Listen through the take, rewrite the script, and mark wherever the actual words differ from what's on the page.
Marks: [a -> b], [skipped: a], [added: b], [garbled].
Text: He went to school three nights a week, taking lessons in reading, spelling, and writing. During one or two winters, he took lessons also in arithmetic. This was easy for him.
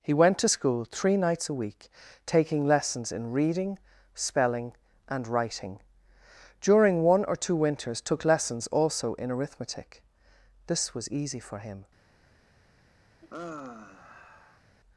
He went to school three nights a week, taking lessons in reading, spelling, and writing. During one or two winters, [skipped: he] took lessons also in arithmetic. This was easy for him.